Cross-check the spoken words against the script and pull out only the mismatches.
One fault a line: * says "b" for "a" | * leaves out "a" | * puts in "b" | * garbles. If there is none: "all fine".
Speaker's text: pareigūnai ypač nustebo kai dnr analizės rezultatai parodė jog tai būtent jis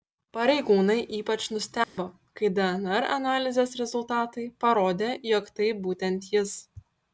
all fine